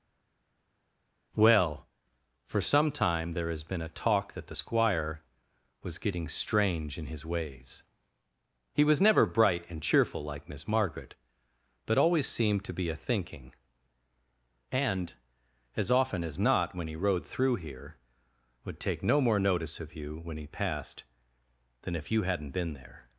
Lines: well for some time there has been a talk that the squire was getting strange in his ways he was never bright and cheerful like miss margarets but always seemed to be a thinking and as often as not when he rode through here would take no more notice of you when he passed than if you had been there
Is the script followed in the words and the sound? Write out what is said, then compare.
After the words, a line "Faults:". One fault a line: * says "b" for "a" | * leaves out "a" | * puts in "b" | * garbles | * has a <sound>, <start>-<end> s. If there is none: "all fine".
well for some time there has been a talk that the squire was getting strange in his ways he was never bright and cheerful like miss margaret but always seemed to be a thinking and as often as not when he rode through here would take no more notice of you when he passed than if you hadn't been there
Faults:
* says "margaret" for "margarets"
* says "hadn't" for "had"